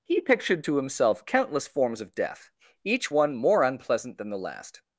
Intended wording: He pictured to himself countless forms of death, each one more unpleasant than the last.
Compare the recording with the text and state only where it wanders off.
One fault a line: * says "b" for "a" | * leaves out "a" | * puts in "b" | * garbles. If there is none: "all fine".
all fine